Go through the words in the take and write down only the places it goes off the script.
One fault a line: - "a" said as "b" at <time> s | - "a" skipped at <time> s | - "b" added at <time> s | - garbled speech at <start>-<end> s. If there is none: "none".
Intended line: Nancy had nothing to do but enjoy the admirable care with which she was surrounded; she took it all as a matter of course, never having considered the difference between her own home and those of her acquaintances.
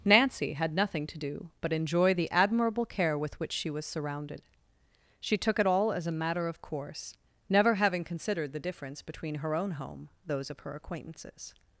- "and" skipped at 10.1 s